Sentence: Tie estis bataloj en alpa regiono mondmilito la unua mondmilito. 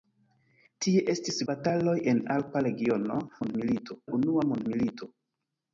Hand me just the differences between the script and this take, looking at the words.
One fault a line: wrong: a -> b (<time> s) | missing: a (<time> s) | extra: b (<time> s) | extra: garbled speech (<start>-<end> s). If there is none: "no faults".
no faults